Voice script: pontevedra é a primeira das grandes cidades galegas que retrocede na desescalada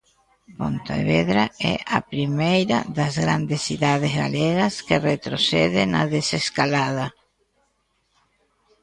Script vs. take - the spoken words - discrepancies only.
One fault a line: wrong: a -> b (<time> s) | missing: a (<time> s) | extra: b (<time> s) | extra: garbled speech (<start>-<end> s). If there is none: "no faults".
no faults